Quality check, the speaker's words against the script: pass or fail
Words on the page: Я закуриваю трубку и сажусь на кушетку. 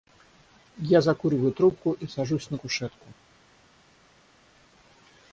pass